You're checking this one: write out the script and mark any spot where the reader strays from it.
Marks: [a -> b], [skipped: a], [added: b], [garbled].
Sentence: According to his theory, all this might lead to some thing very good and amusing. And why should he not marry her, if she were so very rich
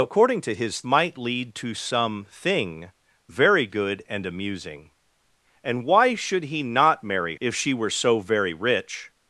According to his [skipped: theory, all this] might lead to some thing very good and amusing. And why should he not marry [skipped: her,] if she were so very rich